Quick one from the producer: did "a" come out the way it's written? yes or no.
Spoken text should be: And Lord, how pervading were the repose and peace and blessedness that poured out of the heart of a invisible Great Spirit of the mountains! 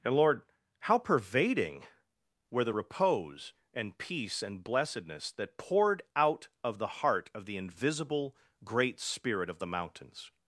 no